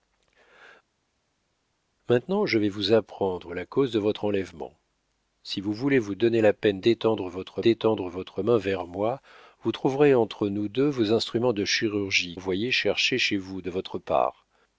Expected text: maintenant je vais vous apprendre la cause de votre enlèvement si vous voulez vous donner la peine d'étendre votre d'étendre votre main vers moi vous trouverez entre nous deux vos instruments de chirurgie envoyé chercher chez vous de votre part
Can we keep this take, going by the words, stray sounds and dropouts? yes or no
yes